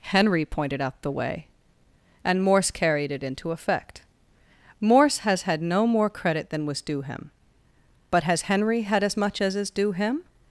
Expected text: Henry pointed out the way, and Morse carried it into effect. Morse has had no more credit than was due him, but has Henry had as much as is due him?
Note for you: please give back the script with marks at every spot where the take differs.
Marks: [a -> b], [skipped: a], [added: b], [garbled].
Henry pointed out the way, and Morse carried it into effect. Morse has had no more credit than was due him, but has Henry had as much as is due him?